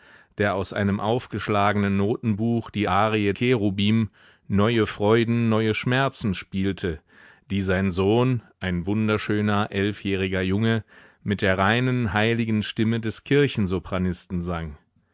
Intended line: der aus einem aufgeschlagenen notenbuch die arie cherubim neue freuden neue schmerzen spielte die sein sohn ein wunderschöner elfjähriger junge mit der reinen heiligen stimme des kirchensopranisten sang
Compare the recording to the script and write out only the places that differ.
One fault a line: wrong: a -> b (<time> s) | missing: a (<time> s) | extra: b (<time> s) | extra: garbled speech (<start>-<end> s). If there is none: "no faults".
no faults